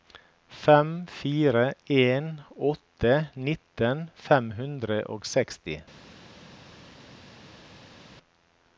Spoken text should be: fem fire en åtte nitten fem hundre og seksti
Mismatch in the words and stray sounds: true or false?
false